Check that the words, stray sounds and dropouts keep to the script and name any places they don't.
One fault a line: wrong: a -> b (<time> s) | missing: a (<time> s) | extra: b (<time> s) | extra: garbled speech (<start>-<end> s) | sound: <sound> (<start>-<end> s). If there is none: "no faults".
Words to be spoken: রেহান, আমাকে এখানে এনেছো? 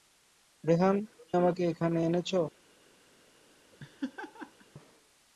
sound: laugh (3.7-4.7 s)